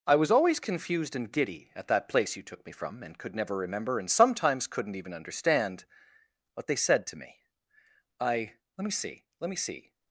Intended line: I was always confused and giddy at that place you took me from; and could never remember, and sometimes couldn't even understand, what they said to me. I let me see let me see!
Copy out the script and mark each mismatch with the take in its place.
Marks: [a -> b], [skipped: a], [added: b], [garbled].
I was always confused and giddy at that place you took me from; and could never remember, and sometimes couldn't even understand, what they said to me. I let me see let me see!